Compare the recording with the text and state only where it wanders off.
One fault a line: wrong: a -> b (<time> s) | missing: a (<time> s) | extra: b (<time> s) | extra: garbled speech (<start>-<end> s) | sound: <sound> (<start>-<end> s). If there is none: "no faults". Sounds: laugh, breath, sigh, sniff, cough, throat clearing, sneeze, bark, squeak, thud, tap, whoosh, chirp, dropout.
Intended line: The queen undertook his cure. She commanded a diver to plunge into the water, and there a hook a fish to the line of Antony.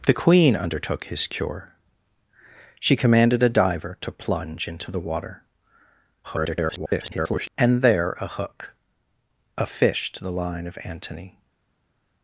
extra: garbled speech (6.2-7.5 s)